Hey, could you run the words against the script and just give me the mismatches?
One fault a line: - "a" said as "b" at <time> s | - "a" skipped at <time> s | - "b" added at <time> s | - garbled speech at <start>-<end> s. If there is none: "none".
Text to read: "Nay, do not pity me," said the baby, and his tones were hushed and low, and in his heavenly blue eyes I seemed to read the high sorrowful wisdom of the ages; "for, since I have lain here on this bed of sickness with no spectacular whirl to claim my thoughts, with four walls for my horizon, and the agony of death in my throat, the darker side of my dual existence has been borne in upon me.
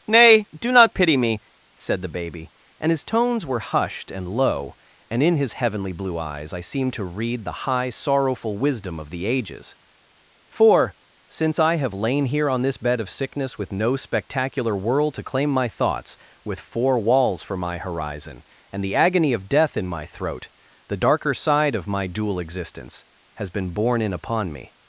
- "whirl" said as "world" at 14.8 s